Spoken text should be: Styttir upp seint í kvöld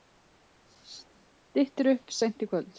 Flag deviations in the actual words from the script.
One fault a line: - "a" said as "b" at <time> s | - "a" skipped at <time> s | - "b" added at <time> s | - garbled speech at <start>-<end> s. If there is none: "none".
none